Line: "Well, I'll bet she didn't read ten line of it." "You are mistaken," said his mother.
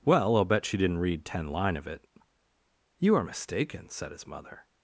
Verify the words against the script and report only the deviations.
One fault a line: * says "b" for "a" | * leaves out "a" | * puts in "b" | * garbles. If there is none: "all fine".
all fine